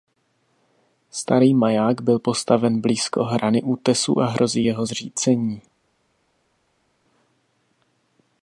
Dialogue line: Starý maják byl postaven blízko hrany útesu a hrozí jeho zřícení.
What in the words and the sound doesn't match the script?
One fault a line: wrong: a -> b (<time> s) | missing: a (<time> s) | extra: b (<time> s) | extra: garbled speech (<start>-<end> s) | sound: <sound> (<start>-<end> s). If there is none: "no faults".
no faults